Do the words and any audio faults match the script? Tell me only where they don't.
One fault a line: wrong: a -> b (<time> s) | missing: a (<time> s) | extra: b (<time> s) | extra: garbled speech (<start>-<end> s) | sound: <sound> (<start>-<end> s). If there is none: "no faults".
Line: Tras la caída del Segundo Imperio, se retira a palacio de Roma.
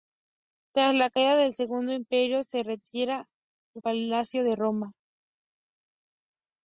no faults